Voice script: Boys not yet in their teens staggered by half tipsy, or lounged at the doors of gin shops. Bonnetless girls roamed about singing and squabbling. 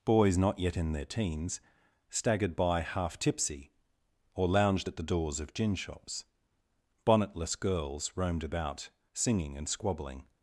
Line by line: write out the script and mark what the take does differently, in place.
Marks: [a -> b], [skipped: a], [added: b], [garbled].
Boys not yet in their teens staggered by half tipsy, or lounged at the doors of gin shops. Bonnetless girls roamed about singing and squabbling.